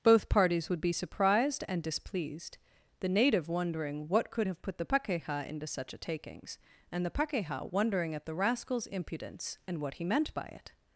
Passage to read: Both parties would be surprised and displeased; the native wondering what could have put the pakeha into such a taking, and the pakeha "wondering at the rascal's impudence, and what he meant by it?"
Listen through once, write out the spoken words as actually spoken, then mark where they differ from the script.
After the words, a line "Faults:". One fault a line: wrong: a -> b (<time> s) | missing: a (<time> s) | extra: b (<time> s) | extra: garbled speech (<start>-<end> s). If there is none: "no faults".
Both parties would be surprised and displeased; the native wondering what could have put the pakeha into such a takings, and the pakeha "wondering at the rascal's impudence, and what he meant by it?"
Faults:
wrong: taking -> takings (6.0 s)